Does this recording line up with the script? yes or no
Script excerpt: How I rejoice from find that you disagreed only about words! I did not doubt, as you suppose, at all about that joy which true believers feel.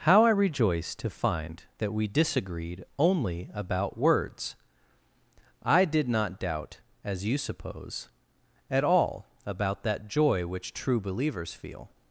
no